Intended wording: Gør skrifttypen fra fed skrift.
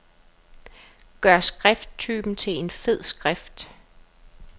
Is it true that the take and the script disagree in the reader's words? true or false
true